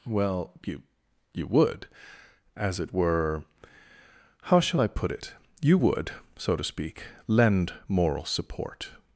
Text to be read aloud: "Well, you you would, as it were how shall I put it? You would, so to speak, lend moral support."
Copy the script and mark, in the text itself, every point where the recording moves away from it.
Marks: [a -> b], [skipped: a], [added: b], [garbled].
"Well, you you would, as it were how shall I put it? You would, so to speak, lend moral support."